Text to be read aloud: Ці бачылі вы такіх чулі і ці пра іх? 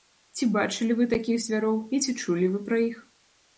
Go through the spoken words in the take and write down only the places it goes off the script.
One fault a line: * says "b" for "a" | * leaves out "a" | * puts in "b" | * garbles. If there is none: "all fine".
* says "звяроў" for "чулі"
* puts in "чулі вы"